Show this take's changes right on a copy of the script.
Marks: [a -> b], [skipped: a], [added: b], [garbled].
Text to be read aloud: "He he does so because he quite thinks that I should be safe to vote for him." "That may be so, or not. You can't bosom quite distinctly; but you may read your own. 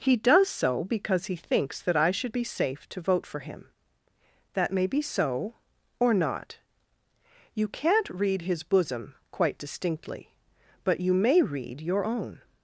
"He [skipped: he] does so because he [skipped: quite] thinks that I should be safe to vote for him." "That may be so, or not. You can't [added: read his] bosom quite distinctly; but you may read your own.